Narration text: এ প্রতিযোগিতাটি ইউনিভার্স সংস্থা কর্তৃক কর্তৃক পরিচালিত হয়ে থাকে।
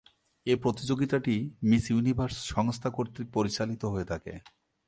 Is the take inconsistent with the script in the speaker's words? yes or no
yes